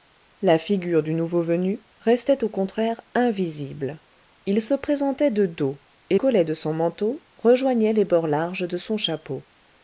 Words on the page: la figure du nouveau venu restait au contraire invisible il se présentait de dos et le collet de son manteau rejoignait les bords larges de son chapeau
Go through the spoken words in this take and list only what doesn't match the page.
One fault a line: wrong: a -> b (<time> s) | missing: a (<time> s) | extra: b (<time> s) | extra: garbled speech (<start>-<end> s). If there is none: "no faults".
missing: le (6.2 s)